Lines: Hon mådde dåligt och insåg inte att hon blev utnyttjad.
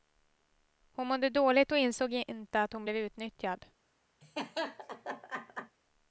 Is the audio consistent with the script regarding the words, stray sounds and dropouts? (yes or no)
no